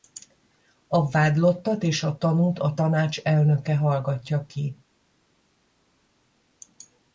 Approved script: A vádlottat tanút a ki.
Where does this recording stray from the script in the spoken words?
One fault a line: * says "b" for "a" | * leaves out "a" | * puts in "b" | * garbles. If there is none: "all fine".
* puts in "és a"
* puts in "tanács elnöke hallgatja"